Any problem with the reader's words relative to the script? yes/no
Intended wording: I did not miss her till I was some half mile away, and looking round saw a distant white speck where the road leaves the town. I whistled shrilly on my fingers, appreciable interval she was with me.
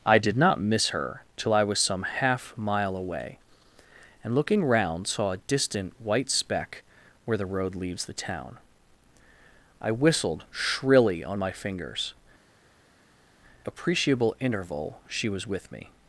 no